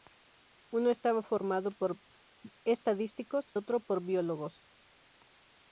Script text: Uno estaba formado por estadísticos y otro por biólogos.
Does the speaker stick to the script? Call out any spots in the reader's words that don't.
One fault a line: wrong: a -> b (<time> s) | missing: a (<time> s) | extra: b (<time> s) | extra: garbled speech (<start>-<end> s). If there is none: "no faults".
missing: y (3.5 s)